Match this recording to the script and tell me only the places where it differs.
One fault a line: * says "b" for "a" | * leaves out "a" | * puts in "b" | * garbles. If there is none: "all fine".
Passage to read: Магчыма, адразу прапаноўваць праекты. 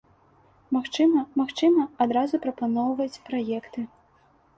* puts in "магчыма"